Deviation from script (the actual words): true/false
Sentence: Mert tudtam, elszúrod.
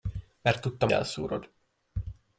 false